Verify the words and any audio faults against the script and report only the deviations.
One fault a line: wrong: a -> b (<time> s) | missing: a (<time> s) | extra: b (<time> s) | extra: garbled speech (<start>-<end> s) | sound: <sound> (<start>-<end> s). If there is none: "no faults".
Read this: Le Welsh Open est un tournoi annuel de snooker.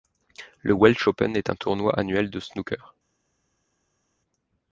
no faults